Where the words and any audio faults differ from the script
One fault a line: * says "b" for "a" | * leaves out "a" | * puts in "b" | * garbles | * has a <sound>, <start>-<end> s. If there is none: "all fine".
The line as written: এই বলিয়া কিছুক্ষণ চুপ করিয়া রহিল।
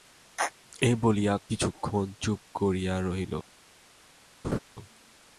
* has a laugh, 4.4-4.6 s